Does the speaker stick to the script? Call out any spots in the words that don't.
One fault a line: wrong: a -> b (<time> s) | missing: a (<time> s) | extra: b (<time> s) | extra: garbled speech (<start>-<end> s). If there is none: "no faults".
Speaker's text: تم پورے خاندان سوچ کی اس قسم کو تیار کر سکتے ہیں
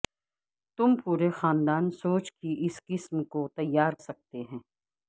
missing: کر (3.9 s)